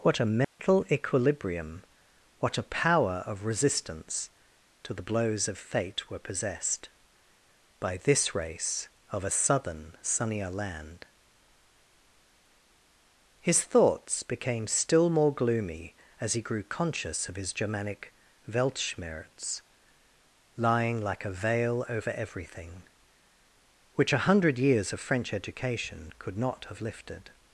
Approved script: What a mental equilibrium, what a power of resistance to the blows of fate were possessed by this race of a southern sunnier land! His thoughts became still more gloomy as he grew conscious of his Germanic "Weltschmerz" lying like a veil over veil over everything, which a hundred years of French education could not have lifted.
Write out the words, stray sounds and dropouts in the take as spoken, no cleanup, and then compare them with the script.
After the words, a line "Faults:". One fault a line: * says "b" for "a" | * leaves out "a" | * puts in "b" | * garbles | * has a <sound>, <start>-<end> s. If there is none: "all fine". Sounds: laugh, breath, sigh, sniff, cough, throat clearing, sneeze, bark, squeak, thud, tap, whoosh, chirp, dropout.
What a mental equilibrium, what a power of resistance to the blows of fate were possessed by this race of a southern sunnier land! His thoughts became still more gloomy as he grew conscious of his Germanic "Weltschmerz" lying like a veil over everything, which a hundred years of French education could not have lifted.
Faults:
* has a dropout, 0.4-0.6 s
* leaves out "veil over"